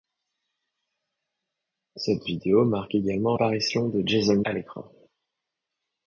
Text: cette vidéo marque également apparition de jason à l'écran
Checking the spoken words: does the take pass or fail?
pass